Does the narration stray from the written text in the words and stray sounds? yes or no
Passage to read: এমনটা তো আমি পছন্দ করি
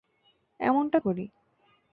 yes